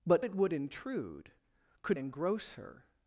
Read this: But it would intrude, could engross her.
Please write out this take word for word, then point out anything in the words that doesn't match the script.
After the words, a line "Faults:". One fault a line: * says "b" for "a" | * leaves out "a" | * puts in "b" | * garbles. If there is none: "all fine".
But it would intrude, could engross her.
Faults:
all fine